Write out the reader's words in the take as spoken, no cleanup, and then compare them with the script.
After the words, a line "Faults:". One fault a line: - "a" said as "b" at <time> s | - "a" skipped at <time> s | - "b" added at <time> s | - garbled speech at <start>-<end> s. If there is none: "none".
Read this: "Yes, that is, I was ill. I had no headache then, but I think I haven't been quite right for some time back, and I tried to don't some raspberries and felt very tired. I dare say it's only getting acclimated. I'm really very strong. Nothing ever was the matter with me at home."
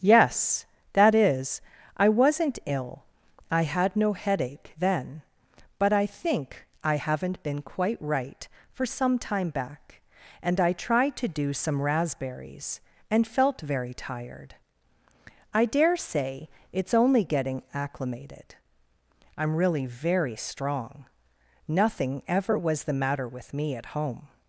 "Yes, that is, I wasn't ill. I had no headache then, but I think I haven't been quite right for some time back, and I tried to do some raspberries and felt very tired. I dare say it's only getting acclimated. I'm really very strong. Nothing ever was the matter with me at home."
Faults:
- "was" said as "wasn't" at 2.1 s
- "don't" said as "do" at 11.3 s